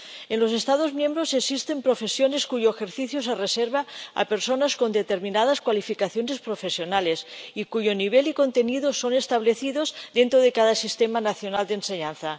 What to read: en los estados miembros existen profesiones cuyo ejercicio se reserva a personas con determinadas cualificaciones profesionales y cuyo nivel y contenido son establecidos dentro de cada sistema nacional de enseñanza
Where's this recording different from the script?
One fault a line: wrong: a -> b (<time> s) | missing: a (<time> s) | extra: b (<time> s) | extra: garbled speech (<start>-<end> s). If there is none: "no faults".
no faults